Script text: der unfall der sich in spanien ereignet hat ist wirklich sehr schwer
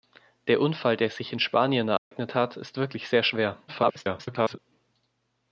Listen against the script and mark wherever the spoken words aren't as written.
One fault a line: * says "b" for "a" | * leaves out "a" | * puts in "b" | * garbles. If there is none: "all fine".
* garbles